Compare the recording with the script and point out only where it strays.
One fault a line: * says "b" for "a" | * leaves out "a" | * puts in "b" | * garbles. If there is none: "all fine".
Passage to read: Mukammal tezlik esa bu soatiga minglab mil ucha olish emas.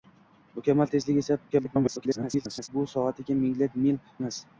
* garbles
* leaves out "ucha olish"